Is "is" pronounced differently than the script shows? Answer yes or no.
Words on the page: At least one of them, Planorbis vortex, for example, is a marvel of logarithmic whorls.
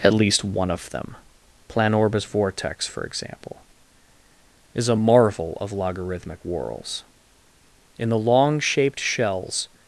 no